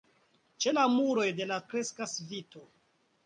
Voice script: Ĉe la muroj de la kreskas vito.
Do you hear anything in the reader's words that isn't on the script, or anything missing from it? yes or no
no